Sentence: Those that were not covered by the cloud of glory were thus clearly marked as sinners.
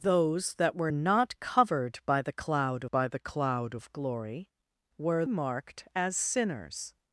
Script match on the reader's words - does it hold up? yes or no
no